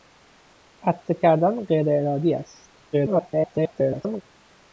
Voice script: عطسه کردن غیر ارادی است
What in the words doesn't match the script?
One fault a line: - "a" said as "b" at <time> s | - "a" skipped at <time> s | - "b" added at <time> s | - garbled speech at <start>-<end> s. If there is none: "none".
- garbled speech at 2.9-4.2 s